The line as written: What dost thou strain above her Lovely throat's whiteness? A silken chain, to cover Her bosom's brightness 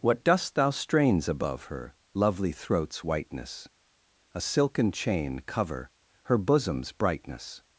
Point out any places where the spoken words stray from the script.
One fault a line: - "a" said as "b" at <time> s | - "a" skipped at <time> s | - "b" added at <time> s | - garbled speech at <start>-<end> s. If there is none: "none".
- "strain" said as "strains" at 0.7 s
- "to" skipped at 5.4 s